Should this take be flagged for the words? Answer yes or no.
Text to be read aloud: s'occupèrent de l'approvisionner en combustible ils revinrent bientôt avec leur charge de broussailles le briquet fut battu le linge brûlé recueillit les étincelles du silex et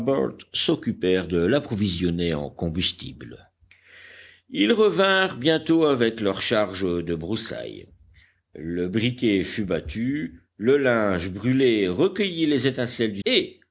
yes